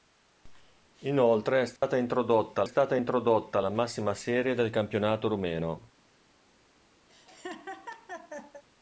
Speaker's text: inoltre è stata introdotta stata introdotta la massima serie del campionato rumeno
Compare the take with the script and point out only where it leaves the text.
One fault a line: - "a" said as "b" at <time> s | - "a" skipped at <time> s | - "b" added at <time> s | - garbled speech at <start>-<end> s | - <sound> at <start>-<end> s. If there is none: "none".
- dropout at 1.8-1.8 s
- laugh at 7.1-8.6 s